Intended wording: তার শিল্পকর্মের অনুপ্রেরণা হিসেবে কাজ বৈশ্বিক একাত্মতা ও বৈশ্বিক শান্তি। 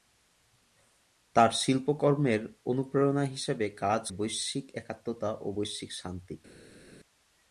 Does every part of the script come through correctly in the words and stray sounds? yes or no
yes